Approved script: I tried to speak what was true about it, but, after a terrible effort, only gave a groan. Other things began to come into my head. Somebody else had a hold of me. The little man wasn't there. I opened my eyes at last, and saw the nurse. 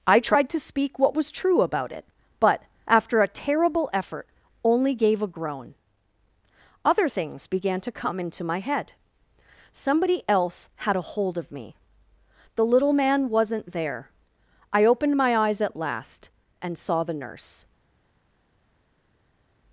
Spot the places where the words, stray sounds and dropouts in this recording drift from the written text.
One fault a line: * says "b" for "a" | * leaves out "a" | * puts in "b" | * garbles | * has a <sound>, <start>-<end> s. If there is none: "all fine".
all fine